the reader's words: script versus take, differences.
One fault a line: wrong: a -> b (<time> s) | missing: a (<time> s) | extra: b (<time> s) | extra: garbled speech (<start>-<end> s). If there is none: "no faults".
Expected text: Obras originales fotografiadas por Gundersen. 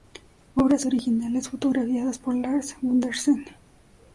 extra: Lars (2.4 s)